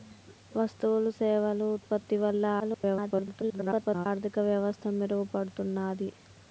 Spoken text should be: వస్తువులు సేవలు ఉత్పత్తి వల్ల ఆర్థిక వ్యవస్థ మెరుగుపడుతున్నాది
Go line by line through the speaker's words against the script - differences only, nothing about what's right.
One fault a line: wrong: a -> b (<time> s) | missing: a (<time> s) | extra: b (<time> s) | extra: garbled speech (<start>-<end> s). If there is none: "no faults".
extra: garbled speech (2.6-4.1 s)